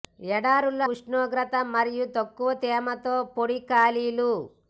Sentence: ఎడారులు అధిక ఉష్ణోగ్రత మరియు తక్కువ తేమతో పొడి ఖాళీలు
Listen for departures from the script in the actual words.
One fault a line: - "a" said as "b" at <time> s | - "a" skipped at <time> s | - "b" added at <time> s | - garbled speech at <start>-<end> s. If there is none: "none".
- "అధిక" skipped at 0.9 s